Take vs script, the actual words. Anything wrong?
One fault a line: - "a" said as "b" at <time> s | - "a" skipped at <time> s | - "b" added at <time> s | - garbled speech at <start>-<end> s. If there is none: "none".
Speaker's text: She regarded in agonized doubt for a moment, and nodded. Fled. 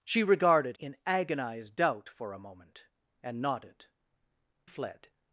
none